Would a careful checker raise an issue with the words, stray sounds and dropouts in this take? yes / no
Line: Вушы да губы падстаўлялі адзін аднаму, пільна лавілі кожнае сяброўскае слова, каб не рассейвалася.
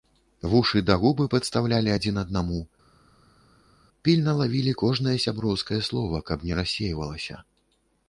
no